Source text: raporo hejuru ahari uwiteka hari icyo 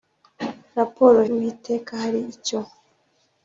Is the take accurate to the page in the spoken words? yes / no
no